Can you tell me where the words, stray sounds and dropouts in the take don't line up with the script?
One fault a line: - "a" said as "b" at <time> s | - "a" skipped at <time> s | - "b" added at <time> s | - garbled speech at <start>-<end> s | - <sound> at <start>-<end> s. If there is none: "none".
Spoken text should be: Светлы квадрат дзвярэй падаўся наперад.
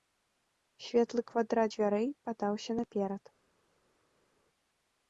none